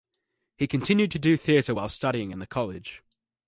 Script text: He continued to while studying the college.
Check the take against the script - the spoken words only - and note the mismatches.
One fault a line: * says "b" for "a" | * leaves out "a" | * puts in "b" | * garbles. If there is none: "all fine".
* puts in "do theatre"
* puts in "in"